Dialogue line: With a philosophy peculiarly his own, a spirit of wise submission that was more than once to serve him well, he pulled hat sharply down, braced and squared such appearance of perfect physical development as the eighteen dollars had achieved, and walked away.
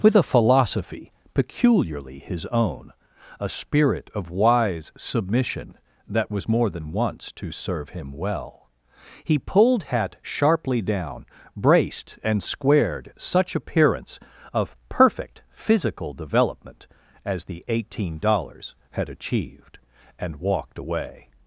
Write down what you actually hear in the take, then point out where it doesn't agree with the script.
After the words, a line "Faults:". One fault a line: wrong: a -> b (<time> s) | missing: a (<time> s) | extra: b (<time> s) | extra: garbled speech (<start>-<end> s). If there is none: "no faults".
With a philosophy peculiarly his own, a spirit of wise submission that was more than once to serve him well, he pulled hat sharply down, braced and squared such appearance of perfect physical development as the eighteen dollars had achieved, and walked away.
Faults:
no faults